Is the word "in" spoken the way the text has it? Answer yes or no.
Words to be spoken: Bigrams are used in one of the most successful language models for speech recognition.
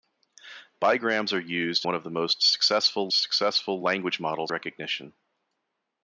no